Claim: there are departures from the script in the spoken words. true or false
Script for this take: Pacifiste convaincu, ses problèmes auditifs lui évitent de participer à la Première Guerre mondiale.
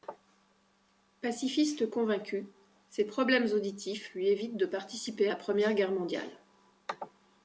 true